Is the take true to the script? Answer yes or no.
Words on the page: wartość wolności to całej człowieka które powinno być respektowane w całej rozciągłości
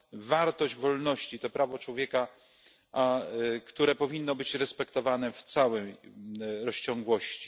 no